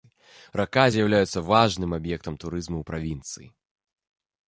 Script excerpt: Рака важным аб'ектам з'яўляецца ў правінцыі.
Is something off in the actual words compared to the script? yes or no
yes